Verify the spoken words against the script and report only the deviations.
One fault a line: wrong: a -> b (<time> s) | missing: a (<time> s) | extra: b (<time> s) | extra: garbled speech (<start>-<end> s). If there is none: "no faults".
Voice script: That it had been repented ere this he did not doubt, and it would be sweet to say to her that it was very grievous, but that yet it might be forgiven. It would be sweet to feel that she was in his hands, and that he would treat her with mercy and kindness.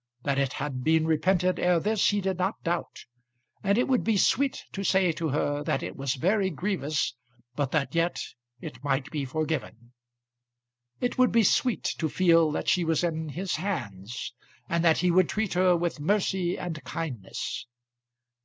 no faults